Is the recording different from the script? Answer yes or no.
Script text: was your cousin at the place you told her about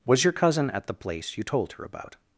no